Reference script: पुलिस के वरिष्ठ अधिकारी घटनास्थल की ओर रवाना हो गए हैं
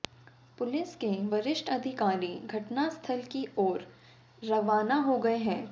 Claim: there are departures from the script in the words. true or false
false